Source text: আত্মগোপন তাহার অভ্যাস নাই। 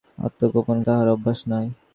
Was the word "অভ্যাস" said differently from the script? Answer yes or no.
no